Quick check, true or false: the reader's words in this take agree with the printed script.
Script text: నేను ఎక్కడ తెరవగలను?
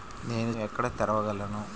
true